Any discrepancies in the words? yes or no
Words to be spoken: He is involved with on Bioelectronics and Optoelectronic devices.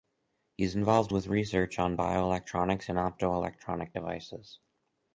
yes